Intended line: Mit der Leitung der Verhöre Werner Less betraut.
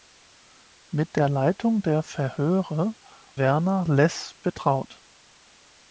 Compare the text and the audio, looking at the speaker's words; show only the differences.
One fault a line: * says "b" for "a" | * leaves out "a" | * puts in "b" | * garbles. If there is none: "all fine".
all fine